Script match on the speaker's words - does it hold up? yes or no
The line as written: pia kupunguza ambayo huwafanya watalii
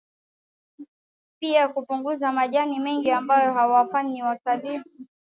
no